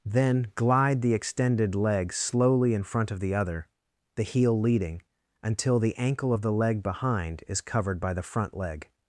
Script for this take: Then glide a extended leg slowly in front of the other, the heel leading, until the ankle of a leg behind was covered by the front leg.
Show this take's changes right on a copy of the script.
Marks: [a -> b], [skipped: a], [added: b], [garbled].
Then glide [a -> the] extended leg slowly in front of the other, the heel leading, until the ankle of [a -> the] leg behind [was -> is] covered by the front leg.